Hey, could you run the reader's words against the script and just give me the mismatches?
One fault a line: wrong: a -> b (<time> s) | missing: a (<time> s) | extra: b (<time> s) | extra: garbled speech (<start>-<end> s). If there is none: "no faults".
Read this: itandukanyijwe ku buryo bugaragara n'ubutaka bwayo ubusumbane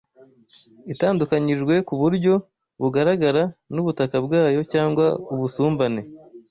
extra: cyangwa (4.7 s)